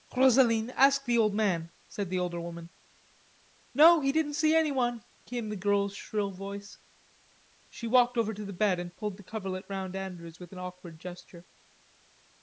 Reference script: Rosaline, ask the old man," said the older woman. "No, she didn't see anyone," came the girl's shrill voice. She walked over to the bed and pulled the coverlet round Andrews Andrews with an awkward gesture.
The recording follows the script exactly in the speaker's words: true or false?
false